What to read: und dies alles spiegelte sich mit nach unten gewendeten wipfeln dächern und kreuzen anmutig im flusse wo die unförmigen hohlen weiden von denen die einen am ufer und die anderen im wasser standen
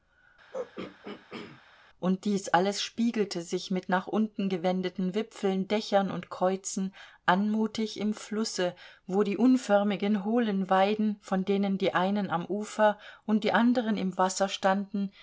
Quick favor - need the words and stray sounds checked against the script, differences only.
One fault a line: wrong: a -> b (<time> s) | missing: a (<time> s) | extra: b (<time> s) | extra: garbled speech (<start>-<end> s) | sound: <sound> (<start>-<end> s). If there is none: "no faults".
sound: throat clearing (0.5-1.6 s)